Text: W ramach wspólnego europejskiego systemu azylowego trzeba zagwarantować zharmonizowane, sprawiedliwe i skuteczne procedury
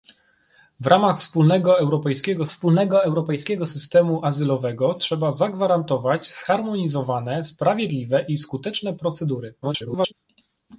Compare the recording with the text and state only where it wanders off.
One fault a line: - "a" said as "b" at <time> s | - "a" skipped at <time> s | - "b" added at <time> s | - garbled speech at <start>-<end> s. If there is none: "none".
- "wspólnego europejskiego" added at 2.5 s
- garbled speech at 9.6-10.1 s